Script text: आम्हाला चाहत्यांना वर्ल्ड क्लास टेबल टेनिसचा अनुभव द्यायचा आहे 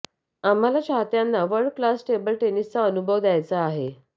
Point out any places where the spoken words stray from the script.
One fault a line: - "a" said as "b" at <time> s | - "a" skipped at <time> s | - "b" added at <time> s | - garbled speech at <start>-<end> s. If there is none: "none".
none